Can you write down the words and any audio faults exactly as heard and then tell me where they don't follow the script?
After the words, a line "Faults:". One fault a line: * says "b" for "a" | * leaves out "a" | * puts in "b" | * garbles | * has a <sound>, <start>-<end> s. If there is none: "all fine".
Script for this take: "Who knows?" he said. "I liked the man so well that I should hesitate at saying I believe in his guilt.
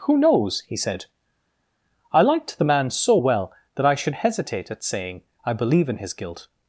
"Who knows?" he said. "I liked the man so well that I should hesitate at saying I believe in his guilt.
Faults:
all fine